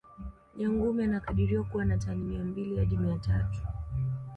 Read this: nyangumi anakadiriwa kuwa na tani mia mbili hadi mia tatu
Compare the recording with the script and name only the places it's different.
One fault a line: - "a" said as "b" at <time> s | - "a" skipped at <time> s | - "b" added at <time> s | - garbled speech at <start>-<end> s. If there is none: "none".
none